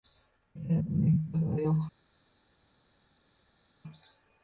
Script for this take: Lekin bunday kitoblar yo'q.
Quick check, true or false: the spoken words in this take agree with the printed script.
true